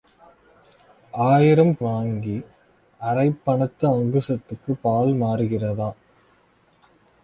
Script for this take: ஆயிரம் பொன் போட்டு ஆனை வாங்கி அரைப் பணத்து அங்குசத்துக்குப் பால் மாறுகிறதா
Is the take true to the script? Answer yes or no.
no